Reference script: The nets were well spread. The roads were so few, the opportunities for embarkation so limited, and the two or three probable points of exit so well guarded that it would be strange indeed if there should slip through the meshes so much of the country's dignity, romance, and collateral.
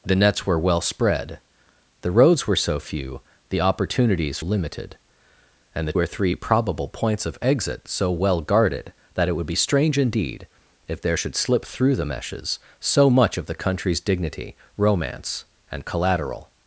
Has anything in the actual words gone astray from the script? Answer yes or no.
yes